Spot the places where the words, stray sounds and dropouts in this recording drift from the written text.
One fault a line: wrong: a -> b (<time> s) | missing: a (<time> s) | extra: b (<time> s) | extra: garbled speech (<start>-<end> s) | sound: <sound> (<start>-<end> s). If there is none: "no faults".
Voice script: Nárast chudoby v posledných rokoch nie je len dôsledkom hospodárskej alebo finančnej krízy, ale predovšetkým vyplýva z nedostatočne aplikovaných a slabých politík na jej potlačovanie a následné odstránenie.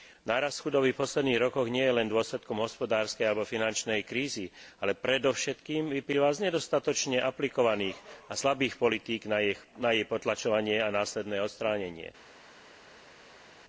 no faults